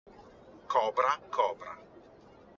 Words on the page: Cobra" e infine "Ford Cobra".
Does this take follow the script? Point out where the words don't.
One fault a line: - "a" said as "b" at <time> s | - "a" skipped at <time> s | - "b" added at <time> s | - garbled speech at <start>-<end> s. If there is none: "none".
- "e infine Ford" skipped at 1.2 s